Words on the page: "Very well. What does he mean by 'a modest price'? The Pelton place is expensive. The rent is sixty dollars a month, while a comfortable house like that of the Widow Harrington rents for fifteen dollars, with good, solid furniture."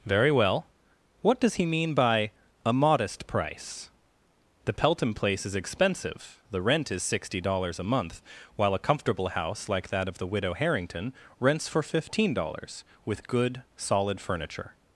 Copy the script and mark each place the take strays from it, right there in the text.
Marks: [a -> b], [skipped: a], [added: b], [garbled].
"Very well. What does he mean by 'a modest price'? The Pelton place is expensive. The rent is sixty dollars a month, while a comfortable house like that of the Widow Harrington rents for fifteen dollars, with good, solid furniture."